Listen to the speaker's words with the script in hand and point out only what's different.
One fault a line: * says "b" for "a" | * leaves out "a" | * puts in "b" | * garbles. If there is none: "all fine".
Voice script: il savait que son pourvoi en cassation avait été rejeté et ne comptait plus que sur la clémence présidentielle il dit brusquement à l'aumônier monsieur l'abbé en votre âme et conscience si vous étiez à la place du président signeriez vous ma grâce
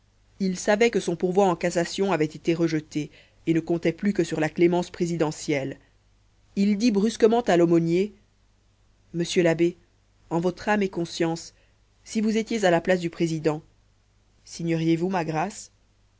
all fine